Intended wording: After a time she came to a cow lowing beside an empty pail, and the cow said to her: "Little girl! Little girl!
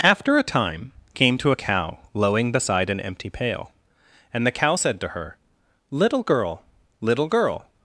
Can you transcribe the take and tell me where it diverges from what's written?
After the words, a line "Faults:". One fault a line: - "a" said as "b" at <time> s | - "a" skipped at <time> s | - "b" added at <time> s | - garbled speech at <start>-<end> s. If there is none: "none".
After a time came to a cow lowing beside an empty pail, and the cow said to her: "Little girl! Little girl!
Faults:
- "she" skipped at 0.9 s